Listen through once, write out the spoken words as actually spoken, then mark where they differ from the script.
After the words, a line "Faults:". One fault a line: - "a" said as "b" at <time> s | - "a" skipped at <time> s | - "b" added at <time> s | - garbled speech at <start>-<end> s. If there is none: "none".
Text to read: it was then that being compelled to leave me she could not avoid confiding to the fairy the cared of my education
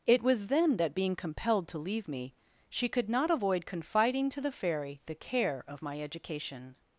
it was then that being compelled to leave me she could not avoid confiding to the fairy the care of my education
Faults:
- "cared" said as "care" at 5.1 s